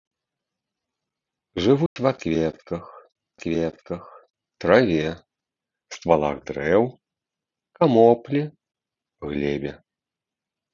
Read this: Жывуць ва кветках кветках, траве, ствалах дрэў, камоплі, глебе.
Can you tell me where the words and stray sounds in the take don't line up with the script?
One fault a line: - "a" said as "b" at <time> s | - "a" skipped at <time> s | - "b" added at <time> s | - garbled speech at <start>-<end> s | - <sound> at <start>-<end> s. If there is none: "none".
- dropout at 1.9-2.0 s